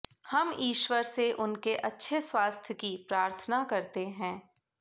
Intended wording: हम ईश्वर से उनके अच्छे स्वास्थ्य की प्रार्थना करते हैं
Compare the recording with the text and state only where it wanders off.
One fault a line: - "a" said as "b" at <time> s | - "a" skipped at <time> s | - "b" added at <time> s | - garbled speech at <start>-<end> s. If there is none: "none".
none